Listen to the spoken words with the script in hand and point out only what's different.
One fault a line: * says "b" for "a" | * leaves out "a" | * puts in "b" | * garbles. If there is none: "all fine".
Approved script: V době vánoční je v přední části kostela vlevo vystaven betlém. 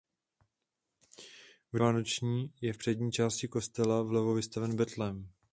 * leaves out "době"